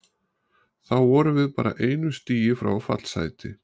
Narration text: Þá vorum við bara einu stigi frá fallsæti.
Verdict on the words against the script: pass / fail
pass